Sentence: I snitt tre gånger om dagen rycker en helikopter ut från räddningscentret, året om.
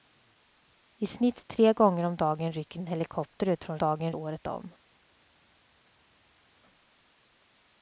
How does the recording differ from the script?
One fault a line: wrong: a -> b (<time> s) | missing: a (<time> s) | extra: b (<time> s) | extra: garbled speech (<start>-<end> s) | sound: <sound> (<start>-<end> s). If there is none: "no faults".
wrong: räddningscentret -> dagen (3.8 s)